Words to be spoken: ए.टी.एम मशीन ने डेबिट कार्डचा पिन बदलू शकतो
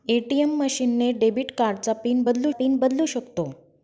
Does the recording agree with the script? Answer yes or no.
no